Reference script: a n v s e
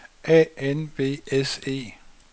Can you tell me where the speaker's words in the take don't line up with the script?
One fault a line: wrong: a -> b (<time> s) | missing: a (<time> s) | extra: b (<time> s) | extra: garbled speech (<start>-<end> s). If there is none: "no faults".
no faults